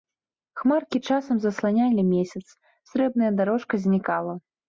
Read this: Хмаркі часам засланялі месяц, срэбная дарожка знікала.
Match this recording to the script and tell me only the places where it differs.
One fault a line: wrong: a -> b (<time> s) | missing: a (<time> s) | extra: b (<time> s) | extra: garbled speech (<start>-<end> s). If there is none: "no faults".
no faults